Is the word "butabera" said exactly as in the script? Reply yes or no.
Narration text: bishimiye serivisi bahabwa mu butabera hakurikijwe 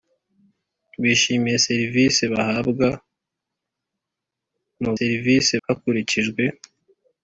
no